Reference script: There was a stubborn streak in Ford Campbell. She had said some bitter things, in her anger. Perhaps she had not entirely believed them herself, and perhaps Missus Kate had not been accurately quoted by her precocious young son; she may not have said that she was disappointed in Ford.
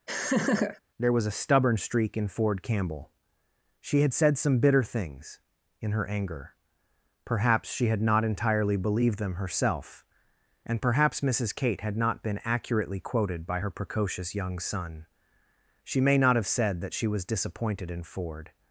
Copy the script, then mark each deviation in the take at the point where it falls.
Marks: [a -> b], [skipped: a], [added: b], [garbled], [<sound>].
[laugh] There was a stubborn streak in Ford Campbell. She had said some bitter things, in her anger. Perhaps she had not entirely believed them herself, and perhaps Missus Kate had not been accurately quoted by her precocious young son; she may not have said that she was disappointed in Ford.